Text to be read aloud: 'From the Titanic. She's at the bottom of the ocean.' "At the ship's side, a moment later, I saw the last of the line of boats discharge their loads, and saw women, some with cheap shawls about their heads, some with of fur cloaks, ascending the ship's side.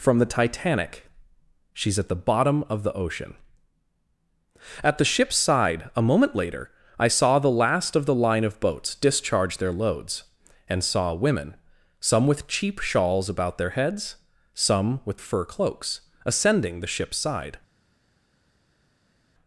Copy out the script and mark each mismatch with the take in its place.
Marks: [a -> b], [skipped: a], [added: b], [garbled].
'From the Titanic. She's at the bottom of the ocean.' "At the ship's side, a moment later, I saw the last of the line of boats discharge their loads, and saw women, some with cheap shawls about their heads, some with of fur cloaks, ascending the ship's side.